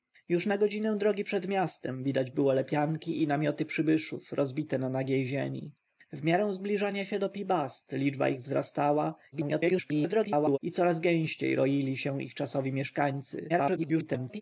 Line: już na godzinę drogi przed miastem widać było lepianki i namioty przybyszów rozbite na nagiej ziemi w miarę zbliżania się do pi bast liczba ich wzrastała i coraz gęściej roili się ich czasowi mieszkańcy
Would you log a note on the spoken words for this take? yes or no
yes